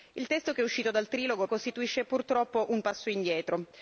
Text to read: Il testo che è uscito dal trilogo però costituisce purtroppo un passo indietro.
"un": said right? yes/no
yes